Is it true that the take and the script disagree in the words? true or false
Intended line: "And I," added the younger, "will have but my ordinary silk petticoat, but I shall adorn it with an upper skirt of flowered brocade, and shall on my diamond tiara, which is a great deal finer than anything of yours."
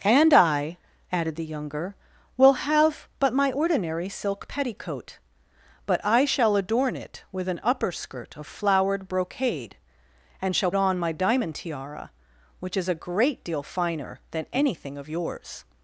false